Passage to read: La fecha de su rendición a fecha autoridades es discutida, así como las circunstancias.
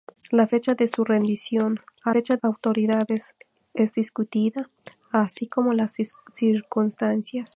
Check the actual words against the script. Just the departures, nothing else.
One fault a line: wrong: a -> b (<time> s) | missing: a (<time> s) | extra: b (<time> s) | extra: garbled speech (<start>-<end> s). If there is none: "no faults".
no faults